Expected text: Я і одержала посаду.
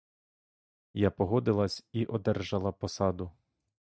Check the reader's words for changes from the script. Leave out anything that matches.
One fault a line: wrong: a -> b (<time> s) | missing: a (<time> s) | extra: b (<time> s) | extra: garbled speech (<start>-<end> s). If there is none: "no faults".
extra: погодилась (1.1 s)